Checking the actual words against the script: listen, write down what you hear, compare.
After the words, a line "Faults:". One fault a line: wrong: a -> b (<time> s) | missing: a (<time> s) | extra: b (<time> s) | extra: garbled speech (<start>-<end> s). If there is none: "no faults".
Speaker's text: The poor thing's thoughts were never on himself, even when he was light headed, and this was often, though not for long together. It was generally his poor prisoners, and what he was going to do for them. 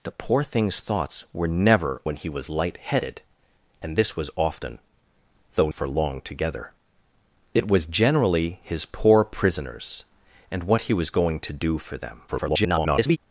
The poor thing's thoughts were never when he was light headed, and this was often, though for long together. It was generally his poor prisoners, and what he was going to do for them. [garbled]
Faults:
missing: on himself even (2.0 s)
missing: not (5.7 s)
extra: garbled speech (12.3-13.2 s)